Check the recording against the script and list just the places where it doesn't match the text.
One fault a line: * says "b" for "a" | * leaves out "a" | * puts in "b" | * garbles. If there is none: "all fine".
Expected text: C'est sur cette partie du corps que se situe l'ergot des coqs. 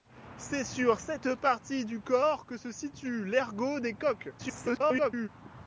* garbles